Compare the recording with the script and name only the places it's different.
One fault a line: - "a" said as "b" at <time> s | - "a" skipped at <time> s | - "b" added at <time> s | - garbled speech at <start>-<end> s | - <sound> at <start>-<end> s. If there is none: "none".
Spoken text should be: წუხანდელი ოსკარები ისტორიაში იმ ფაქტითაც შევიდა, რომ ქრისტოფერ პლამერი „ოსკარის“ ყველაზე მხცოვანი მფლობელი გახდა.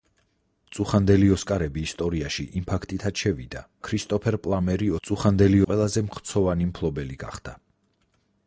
- "რომ" skipped at 3.6 s
- "ოსკარის" said as "წუხანდელი" at 5.1 s